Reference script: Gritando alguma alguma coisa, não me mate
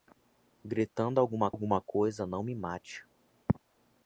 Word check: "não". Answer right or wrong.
right